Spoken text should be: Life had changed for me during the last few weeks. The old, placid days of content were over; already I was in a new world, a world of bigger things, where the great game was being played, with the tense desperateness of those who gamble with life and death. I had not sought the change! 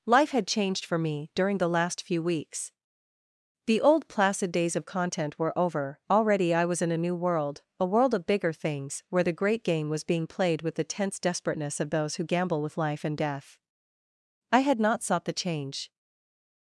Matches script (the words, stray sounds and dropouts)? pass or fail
pass